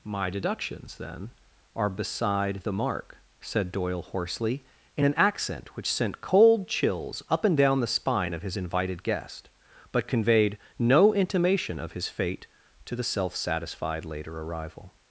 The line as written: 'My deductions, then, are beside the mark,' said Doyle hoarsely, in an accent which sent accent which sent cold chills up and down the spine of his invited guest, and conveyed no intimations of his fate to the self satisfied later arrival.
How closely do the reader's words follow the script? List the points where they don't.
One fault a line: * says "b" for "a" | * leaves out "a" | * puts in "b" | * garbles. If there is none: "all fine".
* leaves out "accent which sent"
* says "but" for "and"
* says "intimation" for "intimations"